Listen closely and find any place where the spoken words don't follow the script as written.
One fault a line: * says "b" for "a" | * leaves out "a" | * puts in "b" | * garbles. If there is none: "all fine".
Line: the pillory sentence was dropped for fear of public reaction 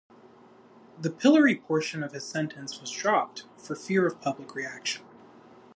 * puts in "portion of his"